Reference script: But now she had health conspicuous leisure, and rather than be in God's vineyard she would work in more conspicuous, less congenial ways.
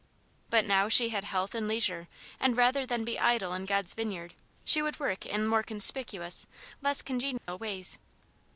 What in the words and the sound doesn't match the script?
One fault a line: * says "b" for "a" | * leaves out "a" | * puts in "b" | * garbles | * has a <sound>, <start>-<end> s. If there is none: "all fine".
* says "and" for "conspicuous"
* puts in "idle"
* has a dropout, 7.4-7.5 s